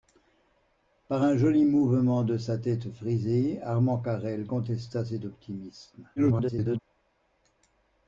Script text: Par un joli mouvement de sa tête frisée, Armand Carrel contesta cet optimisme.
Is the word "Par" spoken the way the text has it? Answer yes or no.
yes